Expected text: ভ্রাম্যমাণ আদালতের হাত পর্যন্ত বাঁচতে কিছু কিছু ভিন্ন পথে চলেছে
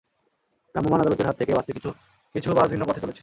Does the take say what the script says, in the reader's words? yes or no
no